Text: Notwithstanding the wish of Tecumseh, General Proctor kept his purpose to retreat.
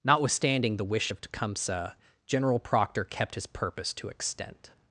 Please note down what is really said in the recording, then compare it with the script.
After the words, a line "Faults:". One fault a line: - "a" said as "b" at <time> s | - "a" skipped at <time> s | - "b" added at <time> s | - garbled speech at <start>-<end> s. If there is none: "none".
Notwithstanding the wish of Tecumseh, General Proctor kept his purpose to extent.
Faults:
- "retreat" said as "extent" at 4.1 s